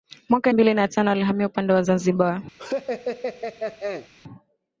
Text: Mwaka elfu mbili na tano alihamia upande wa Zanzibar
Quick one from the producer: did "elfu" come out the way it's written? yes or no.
no